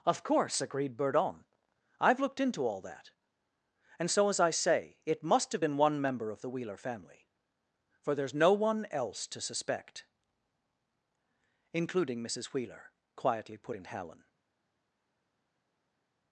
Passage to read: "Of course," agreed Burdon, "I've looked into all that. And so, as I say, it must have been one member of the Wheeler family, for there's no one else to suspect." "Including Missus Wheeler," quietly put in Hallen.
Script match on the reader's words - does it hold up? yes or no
yes